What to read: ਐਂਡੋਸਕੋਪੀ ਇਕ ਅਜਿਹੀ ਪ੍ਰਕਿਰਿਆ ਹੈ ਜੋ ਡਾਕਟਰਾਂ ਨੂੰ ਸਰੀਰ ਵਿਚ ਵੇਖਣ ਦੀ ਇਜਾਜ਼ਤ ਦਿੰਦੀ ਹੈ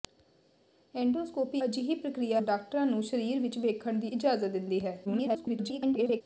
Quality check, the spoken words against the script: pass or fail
fail